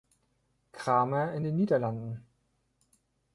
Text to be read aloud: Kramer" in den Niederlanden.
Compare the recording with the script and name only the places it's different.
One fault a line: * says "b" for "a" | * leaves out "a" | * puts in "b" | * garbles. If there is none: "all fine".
all fine